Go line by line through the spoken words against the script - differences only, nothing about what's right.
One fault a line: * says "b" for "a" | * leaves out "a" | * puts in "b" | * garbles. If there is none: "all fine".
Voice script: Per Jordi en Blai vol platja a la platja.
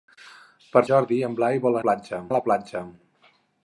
all fine